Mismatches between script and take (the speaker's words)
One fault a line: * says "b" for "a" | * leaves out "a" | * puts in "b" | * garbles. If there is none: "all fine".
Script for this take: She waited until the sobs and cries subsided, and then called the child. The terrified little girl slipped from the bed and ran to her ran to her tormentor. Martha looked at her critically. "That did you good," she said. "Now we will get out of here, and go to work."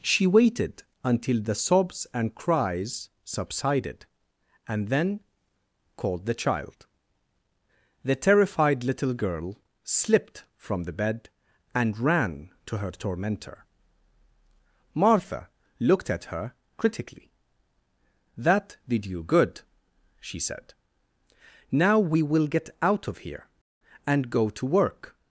* leaves out "ran to her"